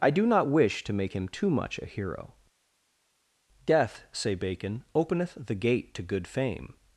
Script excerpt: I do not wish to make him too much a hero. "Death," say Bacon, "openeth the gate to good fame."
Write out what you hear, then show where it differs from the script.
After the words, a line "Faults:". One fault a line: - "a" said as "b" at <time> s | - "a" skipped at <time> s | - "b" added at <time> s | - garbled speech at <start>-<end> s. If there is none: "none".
I do not wish to make him too much a hero. "Death," say Bacon, "openeth the gate to good fame."
Faults:
none